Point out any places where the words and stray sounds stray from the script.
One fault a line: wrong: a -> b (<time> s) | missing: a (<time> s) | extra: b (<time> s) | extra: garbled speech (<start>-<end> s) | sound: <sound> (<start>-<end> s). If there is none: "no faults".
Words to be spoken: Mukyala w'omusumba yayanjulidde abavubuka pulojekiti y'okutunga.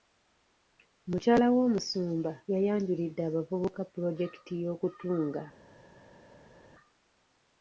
no faults